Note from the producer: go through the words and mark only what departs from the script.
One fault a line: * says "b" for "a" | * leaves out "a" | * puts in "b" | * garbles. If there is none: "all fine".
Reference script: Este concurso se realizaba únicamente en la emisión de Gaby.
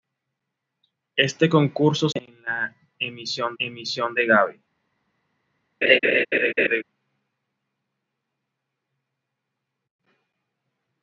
* leaves out "se realizaba únicamente"
* puts in "emisión"